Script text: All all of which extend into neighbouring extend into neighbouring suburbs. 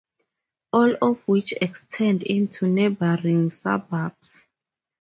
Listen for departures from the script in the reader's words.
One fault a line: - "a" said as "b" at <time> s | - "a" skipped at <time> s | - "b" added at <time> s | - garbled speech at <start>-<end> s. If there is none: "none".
- "all" skipped at 0.9 s
- "extend into neighbouring" skipped at 3.5 s